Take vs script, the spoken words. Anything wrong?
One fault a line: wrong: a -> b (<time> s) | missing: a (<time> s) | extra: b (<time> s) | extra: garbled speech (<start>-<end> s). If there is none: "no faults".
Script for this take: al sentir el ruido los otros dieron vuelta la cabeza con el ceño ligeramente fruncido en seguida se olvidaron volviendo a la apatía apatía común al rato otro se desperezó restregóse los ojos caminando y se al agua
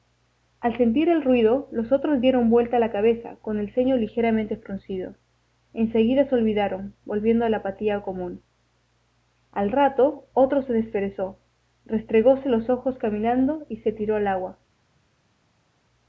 missing: apatía (8.0 s)
extra: tiró (13.9 s)